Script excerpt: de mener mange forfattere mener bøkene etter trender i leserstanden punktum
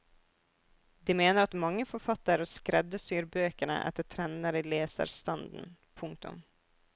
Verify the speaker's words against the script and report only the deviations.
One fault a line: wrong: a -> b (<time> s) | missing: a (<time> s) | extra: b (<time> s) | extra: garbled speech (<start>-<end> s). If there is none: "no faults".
extra: at (1.5 s)
wrong: mener -> skreddersyr (2.5 s)